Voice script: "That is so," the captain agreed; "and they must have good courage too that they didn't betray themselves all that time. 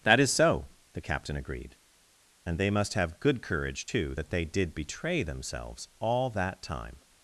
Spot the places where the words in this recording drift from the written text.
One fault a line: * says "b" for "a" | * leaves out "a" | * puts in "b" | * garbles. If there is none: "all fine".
* says "did" for "didn't"